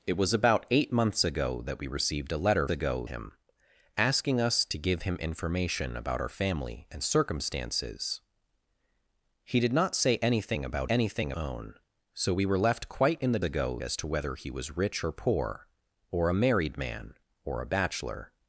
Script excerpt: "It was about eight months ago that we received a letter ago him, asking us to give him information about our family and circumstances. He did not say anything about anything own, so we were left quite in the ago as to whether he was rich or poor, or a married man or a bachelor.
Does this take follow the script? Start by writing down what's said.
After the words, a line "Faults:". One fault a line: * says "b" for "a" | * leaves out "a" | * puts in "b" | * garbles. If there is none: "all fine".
"It was about eight months ago that we received a letter ago him, asking us to give him information about our family and circumstances. He did not say anything about anything own, so we were left quite in the ago as to whether he was rich or poor, or a married man or a bachelor.
Faults:
all fine